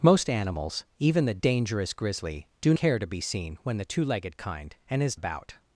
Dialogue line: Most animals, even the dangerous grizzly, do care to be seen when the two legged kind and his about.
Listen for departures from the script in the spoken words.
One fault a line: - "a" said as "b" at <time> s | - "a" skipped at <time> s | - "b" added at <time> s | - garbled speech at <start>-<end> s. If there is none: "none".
none